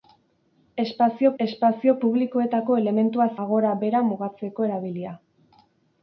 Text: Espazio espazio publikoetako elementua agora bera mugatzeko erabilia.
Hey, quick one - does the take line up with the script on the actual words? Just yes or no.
yes